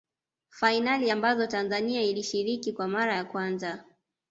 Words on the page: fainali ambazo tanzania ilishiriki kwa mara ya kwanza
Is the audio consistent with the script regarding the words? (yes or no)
yes